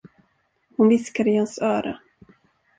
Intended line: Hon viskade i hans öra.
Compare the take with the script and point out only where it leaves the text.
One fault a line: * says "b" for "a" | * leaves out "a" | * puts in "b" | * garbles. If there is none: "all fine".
all fine